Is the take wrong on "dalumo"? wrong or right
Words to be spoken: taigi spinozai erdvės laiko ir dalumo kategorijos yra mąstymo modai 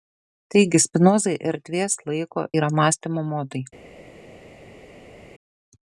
wrong